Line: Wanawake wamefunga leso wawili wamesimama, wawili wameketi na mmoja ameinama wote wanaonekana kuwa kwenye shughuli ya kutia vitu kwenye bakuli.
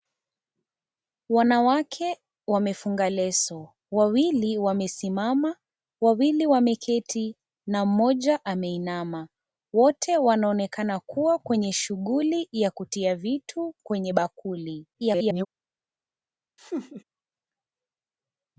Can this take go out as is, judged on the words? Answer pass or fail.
fail